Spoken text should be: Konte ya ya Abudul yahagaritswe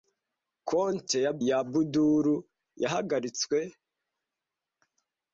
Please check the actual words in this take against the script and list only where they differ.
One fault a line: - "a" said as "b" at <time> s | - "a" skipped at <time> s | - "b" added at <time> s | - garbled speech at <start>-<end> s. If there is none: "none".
none